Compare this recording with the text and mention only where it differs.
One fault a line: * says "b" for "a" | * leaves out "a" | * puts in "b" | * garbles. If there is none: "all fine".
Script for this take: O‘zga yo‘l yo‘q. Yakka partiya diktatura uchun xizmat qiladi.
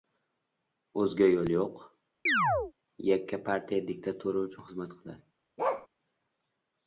all fine